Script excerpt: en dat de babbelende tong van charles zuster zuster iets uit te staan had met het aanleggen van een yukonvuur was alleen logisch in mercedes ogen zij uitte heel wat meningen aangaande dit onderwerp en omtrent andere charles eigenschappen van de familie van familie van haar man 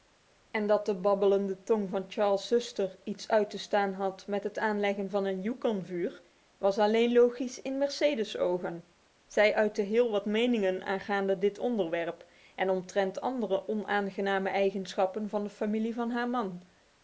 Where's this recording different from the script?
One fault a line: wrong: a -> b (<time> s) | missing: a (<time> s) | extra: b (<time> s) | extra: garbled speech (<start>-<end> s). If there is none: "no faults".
missing: zuster (3.0 s)
wrong: charles -> onaangename (13.7 s)
missing: familie van (16.1 s)